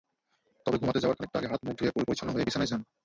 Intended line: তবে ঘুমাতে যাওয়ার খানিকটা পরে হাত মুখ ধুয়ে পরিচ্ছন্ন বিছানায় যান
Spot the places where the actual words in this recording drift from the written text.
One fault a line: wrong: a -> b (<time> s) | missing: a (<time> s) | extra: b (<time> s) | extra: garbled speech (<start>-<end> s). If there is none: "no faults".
wrong: পরে -> আগে (1.4 s)
extra: হয়ে (2.3 s)